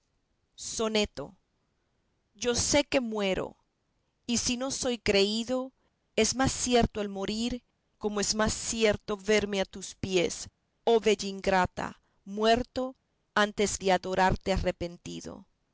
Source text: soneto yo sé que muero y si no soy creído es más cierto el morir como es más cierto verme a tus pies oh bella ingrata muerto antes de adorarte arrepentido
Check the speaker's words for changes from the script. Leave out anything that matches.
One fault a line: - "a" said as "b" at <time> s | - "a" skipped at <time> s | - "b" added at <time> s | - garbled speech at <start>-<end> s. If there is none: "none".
none